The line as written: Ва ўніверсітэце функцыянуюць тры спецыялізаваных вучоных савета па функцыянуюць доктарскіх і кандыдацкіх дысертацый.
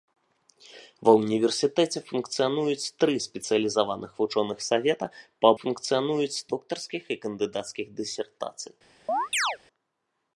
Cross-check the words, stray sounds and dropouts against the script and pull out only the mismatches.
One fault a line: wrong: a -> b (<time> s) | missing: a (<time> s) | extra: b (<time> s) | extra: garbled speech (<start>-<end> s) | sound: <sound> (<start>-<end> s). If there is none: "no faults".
sound: chirp (9.1-9.6 s)